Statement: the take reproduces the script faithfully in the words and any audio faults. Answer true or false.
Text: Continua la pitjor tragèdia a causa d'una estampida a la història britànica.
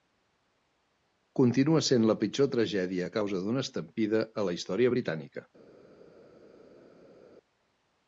false